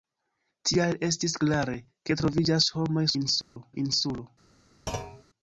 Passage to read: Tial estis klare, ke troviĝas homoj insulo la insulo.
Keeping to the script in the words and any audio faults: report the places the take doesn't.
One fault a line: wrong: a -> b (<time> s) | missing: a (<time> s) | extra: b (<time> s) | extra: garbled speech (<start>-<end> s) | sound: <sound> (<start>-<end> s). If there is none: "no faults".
sound: dropout (3.4-3.6 s)
sound: thud (4.9-5.2 s)